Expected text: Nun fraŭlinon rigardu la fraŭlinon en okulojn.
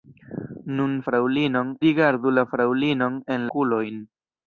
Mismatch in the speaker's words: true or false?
false